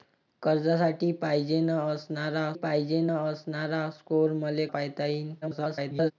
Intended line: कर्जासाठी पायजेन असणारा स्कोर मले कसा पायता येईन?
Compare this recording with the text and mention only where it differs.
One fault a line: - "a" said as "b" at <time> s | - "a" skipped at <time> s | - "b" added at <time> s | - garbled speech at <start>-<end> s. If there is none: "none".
- "पायजेन असणारा" added at 2.5 s
- "कसा" skipped at 4.7 s
- garbled speech at 5.4-6.1 s